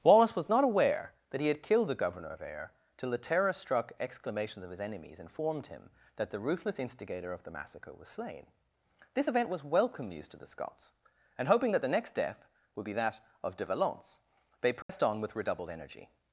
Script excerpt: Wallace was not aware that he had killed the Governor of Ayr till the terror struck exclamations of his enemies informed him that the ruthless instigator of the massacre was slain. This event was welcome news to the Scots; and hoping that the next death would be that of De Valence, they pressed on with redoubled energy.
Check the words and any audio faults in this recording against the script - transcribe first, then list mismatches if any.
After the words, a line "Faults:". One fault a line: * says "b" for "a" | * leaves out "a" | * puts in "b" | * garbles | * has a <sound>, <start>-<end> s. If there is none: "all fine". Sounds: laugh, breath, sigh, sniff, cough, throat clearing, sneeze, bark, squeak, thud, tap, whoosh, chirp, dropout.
Wallace was not aware that he had killed the Governor of Ayr till the terror struck exclamations of his enemies informed him that the ruthless instigator of the massacre was slain. This event was welcome news to the Scots; and hoping that the next death would be that of De Valence, they pressed on with redoubled energy.
Faults:
* has a dropout, 14.8-14.9 s